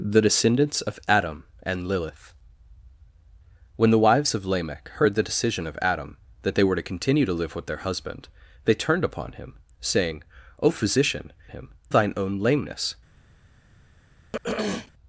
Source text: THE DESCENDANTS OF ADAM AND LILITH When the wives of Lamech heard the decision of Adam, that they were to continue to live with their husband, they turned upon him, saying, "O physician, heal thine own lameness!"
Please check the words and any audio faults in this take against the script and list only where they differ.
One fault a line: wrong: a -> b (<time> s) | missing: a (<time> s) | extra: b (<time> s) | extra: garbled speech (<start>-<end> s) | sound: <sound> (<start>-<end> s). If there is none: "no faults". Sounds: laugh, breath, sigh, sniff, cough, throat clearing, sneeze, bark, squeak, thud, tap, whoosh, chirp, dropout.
wrong: heal -> him (11.5 s)
sound: throat clearing (14.3-14.9 s)